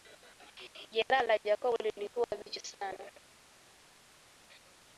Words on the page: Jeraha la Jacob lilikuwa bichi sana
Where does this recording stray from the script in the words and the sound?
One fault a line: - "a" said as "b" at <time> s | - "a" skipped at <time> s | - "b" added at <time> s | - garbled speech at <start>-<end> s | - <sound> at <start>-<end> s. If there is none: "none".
none